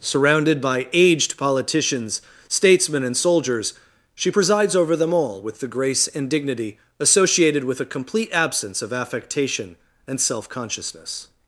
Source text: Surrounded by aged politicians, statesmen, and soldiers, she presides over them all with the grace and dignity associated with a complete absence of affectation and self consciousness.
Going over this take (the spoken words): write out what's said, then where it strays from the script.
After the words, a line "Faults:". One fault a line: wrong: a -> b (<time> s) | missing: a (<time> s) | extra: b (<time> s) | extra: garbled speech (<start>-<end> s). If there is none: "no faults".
Surrounded by aged politicians, statesmen, and soldiers, she presides over them all with the grace and dignity associated with a complete absence of affectation and self consciousness.
Faults:
no faults